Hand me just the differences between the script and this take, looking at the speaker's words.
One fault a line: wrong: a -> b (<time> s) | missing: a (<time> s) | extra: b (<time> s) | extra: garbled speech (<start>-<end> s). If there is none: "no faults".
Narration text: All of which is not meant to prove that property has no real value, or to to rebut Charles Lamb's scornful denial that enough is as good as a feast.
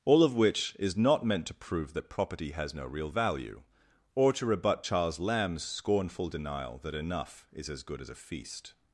missing: to (4.4 s)